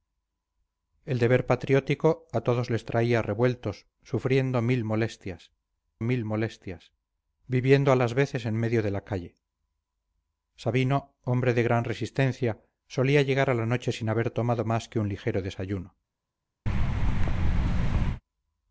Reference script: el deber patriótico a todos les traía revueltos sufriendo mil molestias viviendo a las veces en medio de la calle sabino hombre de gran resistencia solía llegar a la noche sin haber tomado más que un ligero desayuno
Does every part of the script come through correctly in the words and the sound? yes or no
no